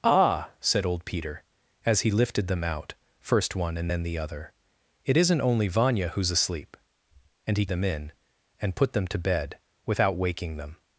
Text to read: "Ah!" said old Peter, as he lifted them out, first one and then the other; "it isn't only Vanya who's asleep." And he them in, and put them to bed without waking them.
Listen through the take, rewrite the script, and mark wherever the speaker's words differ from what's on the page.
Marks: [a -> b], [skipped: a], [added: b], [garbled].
"Ah!" said old Peter, as he lifted them out, first one and then the other; "it isn't only Vanya who's asleep." And he them in, and put them to bed without waking them.